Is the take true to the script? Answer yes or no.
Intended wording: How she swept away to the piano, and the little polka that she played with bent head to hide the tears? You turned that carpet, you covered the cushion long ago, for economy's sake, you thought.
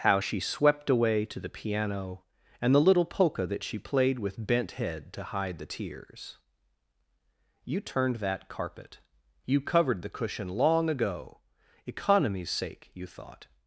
no